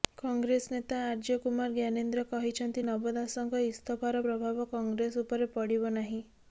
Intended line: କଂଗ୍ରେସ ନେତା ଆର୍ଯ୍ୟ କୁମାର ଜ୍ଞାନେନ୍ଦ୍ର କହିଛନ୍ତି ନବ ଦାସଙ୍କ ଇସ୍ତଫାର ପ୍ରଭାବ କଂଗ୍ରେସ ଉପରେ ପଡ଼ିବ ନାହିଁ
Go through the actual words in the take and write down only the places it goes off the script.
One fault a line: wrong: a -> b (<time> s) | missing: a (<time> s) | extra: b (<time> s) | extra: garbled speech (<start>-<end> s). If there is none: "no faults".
no faults